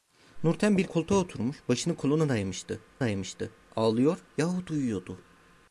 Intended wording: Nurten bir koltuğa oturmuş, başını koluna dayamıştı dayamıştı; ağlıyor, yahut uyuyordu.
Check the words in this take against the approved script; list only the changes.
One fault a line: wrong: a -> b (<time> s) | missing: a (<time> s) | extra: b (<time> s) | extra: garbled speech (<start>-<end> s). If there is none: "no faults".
no faults